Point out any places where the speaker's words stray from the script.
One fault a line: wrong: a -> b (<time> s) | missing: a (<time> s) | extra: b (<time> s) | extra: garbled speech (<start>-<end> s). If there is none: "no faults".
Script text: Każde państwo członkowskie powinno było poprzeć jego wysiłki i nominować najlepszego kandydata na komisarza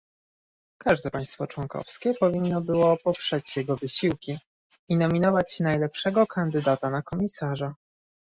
no faults